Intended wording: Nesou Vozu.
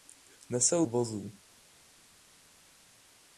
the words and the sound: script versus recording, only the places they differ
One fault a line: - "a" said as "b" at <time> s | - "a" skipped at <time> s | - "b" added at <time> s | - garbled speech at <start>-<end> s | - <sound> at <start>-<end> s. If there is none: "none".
none